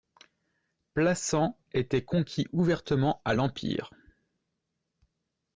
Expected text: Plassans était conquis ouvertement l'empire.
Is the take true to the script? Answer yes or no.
no